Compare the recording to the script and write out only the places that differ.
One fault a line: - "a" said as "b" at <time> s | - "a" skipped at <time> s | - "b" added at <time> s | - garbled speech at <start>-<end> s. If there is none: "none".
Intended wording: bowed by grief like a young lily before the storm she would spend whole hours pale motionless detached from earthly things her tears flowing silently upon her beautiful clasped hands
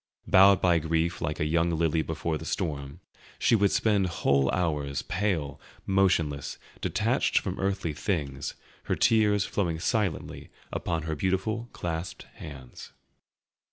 none